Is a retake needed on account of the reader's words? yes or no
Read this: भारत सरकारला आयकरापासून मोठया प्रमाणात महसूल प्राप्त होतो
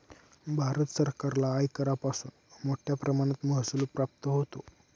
no